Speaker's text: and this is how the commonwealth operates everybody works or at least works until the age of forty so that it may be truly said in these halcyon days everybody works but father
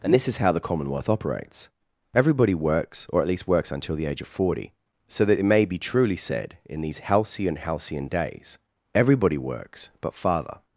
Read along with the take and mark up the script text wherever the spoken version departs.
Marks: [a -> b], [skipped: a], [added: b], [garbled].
and this is how the commonwealth operates everybody works or at least works until the age of forty so that it may be truly said in these halcyon [added: halcyon] days everybody works but father